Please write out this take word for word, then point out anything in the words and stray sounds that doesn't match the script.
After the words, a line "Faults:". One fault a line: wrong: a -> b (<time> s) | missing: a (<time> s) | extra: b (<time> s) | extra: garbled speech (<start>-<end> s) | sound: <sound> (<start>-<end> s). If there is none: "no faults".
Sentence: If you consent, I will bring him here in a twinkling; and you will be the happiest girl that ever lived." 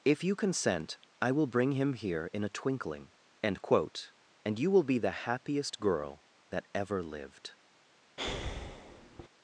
If you consent, I will bring him here in a twinkling; end quote and you will be the happiest girl that ever lived."
Faults:
extra: end quote (3.4 s)
sound: breath (8.2-9.3 s)